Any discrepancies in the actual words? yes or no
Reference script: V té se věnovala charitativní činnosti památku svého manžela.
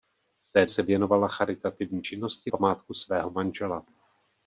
no